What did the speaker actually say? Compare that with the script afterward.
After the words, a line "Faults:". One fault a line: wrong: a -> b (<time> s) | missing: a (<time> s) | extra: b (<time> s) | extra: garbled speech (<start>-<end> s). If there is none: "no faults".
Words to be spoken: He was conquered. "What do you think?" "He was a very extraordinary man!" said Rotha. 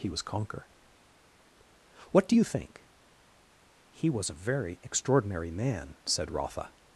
He was conquer. "What do you think?" "He was a very extraordinary man!" said Rotha.
Faults:
wrong: conquered -> conquer (0.2 s)